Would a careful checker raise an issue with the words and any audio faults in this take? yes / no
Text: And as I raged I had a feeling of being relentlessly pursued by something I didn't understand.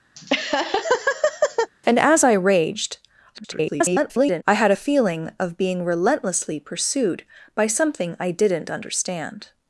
yes